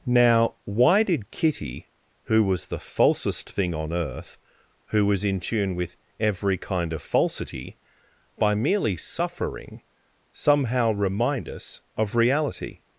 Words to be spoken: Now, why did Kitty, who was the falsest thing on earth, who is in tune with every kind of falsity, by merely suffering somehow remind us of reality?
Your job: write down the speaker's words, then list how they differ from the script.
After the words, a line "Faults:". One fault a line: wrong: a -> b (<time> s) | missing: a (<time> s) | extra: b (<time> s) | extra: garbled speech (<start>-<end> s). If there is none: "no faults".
Now, why did Kitty, who was the falsest thing on earth, who was in tune with every kind of falsity, by merely suffering somehow remind us of reality?
Faults:
wrong: is -> was (5.1 s)